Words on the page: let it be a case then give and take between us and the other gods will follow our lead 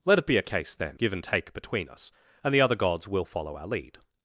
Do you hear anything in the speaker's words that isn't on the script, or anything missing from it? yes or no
no